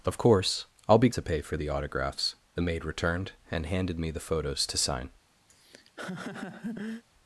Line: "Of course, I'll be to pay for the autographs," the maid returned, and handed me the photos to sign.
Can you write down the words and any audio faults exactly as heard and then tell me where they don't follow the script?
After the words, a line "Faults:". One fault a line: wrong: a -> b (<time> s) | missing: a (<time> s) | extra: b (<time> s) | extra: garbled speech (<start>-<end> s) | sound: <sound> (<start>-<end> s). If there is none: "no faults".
"Of course, I'll be to pay for the autographs," the maid returned, and handed me the photos to sign.
Faults:
sound: laugh (5.5-7.0 s)